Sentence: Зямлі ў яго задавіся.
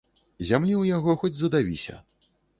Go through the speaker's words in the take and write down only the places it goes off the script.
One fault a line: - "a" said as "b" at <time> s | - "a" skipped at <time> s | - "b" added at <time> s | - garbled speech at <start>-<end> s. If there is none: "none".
- "хоць" added at 1.2 s